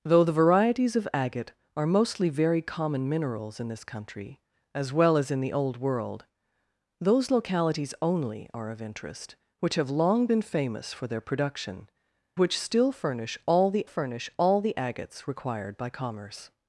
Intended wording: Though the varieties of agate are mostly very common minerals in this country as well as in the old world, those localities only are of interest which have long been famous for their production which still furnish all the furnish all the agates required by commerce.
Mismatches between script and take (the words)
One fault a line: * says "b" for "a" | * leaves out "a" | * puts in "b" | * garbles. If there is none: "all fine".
all fine